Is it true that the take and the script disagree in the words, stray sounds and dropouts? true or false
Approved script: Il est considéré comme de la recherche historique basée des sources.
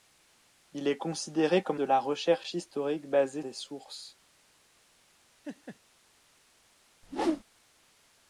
true